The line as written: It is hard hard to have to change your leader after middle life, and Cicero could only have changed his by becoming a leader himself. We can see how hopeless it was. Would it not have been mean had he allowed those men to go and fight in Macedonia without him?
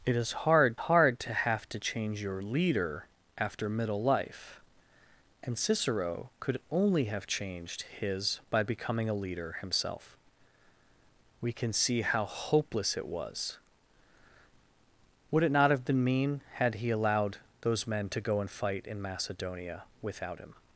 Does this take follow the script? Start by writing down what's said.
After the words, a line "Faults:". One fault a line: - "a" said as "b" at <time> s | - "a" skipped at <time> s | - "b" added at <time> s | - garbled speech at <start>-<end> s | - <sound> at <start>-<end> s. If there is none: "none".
It is hard hard to have to change your leader after middle life, and Cicero could only have changed his by becoming a leader himself. We can see how hopeless it was. Would it not have been mean had he allowed those men to go and fight in Macedonia without him?
Faults:
none